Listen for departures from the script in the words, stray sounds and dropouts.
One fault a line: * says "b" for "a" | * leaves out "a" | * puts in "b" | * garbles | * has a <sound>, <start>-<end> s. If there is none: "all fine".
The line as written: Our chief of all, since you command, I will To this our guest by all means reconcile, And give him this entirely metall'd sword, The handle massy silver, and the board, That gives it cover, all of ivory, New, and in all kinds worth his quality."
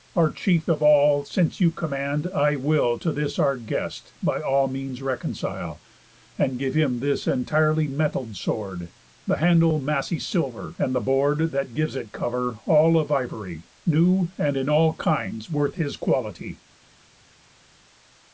all fine